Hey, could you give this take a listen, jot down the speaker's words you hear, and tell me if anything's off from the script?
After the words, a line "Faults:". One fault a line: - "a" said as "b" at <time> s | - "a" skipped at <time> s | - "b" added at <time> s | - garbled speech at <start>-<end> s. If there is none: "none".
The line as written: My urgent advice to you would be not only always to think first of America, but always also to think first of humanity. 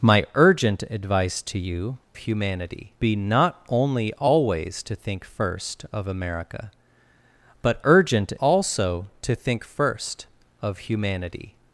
My urgent advice to you humanity be not only always to think first of America, but urgent also to think first of humanity.
Faults:
- "would" said as "humanity" at 2.1 s
- "always" said as "urgent" at 7.8 s